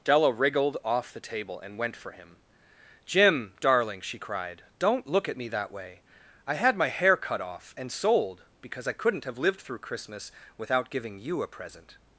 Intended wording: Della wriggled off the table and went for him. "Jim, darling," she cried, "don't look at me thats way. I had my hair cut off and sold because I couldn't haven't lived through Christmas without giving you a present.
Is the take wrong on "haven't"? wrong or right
wrong